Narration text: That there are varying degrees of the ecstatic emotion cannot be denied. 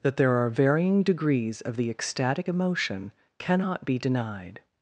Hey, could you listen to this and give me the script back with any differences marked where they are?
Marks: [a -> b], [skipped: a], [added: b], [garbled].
That there are varying degrees of the ecstatic emotion cannot be denied.